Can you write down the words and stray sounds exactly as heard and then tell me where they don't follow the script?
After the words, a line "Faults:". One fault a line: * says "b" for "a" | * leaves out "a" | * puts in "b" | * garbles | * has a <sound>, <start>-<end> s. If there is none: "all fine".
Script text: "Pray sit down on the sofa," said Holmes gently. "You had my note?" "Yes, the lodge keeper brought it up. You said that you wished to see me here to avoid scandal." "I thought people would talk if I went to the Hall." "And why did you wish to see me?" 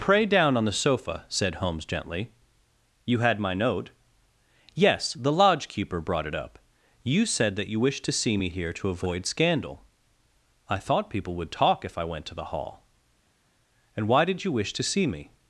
"Pray down on the sofa," said Holmes gently. "You had my note?" "Yes, the lodge keeper brought it up. You said that you wished to see me here to avoid scandal." "I thought people would talk if I went to the Hall." "And why did you wish to see me?"
Faults:
* leaves out "sit"